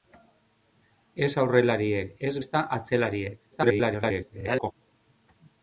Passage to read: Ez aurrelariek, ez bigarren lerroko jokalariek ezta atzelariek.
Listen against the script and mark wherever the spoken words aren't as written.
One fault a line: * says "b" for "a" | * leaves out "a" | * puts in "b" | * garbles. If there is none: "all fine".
* leaves out "bigarren lerroko jokalariek"
* garbles